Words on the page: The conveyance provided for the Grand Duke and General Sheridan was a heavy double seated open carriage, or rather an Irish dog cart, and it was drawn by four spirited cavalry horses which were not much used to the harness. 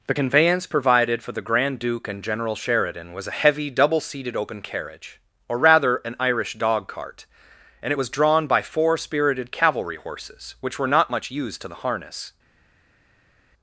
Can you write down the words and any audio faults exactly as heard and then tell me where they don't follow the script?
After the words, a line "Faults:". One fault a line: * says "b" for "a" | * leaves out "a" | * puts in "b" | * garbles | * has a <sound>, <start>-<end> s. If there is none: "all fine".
The conveyance provided for the Grand Duke and General Sheridan was a heavy double seated open carriage, or rather an Irish dog cart, and it was drawn by four spirited cavalry horses which were not much used to the harness.
Faults:
all fine